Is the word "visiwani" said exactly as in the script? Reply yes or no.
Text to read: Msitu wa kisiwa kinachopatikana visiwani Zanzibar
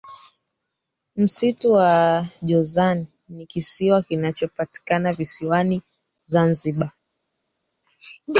yes